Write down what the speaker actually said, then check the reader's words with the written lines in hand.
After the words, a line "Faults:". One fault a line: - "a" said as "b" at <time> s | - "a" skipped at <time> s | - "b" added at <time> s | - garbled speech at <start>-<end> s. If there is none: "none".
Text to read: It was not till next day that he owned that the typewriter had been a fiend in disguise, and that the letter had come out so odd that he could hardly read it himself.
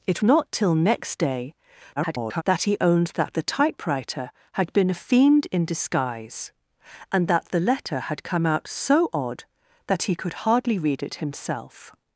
It not till next day [garbled] that he owned that the typewriter had been a fiend in disguise, and that the letter had come out so odd that he could hardly read it himself.
Faults:
- "was" skipped at 0.2 s
- garbled speech at 2.0-2.4 s